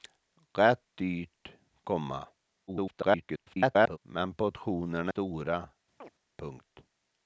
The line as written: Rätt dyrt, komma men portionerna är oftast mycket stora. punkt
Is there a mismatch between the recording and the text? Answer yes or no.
yes